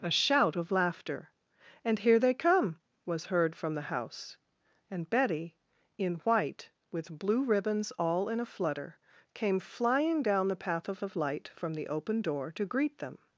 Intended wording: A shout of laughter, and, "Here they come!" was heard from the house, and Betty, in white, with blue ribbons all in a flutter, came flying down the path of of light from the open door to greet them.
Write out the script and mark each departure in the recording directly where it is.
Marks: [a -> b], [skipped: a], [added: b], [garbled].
A shout of laughter, and, "Here they come!" was heard from the house, and Betty, in white, with blue ribbons all in a flutter, came flying down the path of of light from the open door to greet them.